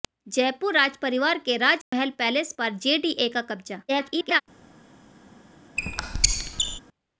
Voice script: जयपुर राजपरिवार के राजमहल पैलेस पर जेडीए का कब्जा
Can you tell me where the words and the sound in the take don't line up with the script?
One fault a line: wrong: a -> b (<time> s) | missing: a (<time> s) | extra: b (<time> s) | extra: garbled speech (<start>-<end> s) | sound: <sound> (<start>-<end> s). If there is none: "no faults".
sound: dropout (1.8-1.9 s)
extra: garbled speech (3.9-4.4 s)
sound: squeak (5.8-6.8 s)